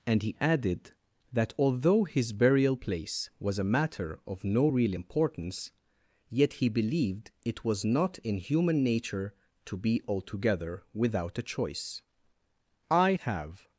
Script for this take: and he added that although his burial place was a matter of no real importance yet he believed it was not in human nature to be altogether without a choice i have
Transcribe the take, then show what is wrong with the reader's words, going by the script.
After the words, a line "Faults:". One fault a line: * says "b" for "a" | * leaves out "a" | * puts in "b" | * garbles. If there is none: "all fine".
and he added that although his burial place was a matter of no real importance yet he believed it was not in human nature to be altogether without a choice i have
Faults:
all fine